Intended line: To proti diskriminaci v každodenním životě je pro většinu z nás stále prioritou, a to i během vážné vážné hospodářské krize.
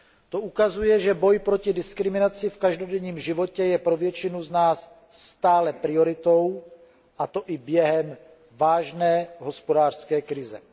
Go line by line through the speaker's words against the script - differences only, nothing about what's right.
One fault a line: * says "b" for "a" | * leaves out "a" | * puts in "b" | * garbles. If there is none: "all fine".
* puts in "ukazuje že boj"
* leaves out "vážné"